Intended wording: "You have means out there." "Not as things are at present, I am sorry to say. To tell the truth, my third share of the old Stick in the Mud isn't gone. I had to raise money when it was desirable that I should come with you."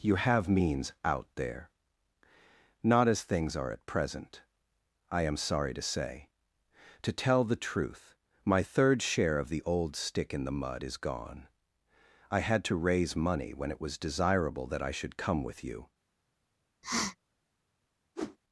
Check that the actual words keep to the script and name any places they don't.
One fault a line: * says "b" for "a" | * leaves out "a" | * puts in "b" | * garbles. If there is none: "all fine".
* says "is" for "isn't"